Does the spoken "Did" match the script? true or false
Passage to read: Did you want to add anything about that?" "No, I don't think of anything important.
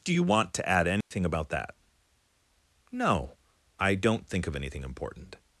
false